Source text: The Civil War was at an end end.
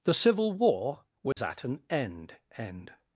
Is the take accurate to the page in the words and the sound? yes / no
no